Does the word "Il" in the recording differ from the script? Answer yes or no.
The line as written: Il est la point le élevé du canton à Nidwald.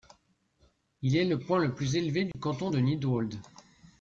no